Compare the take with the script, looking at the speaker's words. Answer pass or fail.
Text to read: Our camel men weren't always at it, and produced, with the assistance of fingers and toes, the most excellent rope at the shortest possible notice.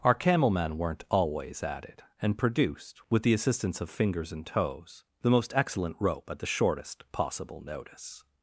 pass